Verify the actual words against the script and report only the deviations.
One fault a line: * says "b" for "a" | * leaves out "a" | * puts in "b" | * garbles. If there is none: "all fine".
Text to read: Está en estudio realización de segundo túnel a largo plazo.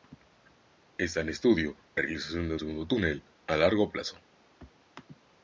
all fine